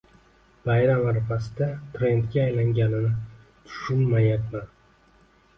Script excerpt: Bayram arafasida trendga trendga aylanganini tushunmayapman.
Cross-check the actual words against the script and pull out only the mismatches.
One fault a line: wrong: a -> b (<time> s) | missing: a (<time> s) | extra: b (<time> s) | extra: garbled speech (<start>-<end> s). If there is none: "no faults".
missing: trendga (2.4 s)